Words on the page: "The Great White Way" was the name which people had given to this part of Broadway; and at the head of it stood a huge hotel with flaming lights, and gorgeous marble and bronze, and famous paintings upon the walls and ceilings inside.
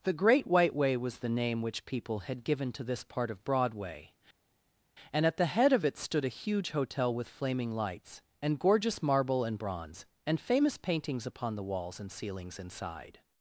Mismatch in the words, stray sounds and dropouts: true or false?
false